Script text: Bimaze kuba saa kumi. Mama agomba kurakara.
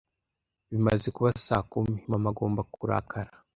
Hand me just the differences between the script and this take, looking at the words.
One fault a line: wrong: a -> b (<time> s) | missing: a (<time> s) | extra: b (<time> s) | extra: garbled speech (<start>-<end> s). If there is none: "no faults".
no faults